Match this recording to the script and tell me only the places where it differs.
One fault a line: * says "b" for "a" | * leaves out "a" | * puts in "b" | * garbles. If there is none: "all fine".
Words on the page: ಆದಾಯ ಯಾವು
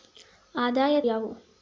all fine